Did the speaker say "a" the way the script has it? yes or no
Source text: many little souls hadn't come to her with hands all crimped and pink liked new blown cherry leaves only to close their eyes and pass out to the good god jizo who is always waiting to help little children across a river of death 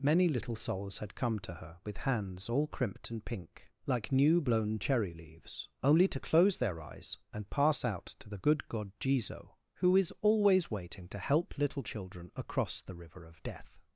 no